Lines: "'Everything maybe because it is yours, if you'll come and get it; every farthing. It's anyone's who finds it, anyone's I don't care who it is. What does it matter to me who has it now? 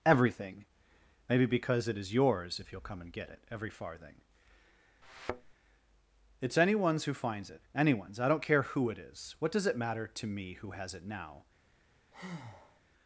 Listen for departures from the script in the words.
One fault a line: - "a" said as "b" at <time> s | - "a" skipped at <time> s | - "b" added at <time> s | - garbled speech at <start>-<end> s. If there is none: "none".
none